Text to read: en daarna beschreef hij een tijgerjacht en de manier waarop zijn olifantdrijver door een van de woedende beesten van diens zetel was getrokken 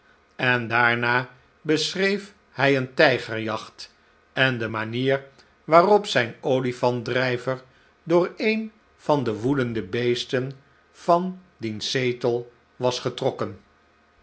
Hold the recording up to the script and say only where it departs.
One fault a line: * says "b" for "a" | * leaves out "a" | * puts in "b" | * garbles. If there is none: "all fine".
all fine